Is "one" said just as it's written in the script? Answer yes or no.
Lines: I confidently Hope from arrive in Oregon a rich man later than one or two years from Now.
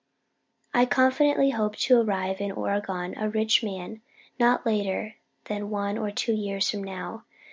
yes